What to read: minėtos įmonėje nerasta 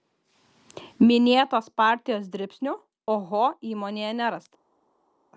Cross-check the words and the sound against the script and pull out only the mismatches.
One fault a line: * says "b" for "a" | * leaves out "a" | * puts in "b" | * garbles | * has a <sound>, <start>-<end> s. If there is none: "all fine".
* puts in "partijos dribsnių oho"